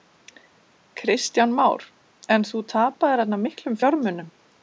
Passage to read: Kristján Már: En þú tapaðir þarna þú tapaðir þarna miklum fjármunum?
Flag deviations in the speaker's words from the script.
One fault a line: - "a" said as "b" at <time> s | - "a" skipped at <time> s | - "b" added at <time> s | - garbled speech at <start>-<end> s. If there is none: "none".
- "þú tapaðir þarna" skipped at 3.4 s